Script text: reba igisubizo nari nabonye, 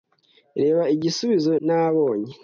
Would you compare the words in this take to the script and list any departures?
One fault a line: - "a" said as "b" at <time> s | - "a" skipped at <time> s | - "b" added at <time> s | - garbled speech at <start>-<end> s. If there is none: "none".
- "nari" skipped at 1.5 s